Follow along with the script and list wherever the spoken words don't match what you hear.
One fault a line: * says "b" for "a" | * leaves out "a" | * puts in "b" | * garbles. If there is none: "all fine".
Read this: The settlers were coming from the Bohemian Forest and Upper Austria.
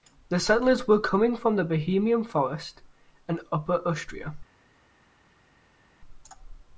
all fine